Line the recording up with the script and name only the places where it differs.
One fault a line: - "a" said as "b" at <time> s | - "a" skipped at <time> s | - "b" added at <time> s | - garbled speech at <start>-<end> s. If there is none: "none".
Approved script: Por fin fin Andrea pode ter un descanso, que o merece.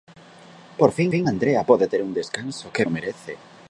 none